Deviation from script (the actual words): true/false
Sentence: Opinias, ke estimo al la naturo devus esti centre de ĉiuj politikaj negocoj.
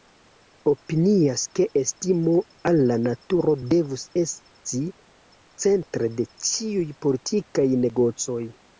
false